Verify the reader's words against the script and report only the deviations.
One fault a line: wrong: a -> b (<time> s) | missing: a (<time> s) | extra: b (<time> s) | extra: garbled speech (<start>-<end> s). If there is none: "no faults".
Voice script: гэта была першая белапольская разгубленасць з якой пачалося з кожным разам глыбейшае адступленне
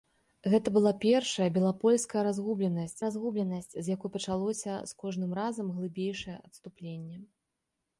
extra: разгубленасць (3.1 s)